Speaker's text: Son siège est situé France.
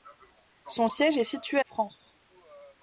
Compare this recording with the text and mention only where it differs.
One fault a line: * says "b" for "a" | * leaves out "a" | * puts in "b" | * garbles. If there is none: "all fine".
all fine